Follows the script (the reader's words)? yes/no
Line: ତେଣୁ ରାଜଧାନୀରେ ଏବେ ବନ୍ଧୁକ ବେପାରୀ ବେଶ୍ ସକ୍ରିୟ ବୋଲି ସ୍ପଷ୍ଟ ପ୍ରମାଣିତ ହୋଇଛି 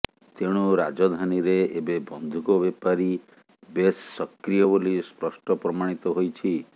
yes